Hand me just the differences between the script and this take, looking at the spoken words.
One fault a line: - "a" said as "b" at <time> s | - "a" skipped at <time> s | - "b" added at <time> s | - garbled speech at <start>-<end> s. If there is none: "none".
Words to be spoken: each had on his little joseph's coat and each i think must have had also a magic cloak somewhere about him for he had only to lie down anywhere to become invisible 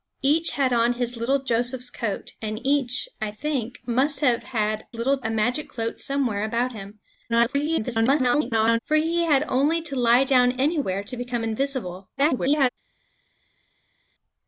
- "also" said as "little" at 4.9 s
- garbled speech at 7.3-8.8 s
- garbled speech at 12.2-12.7 s